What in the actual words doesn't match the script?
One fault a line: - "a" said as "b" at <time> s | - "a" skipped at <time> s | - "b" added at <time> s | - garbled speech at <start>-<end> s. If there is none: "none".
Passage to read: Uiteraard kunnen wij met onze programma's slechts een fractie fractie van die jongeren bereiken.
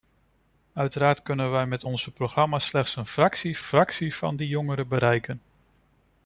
none